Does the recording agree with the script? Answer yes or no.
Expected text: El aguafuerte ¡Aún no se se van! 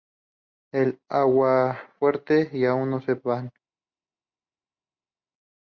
no